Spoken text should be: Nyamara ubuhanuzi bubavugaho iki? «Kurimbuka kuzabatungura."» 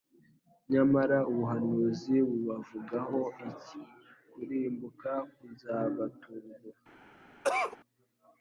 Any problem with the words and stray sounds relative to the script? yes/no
yes